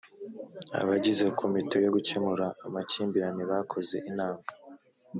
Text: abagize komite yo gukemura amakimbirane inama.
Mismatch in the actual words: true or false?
true